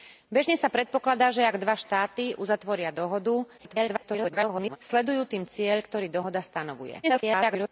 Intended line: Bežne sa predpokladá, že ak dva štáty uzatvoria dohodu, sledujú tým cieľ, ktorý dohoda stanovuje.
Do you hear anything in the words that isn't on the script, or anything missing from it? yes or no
yes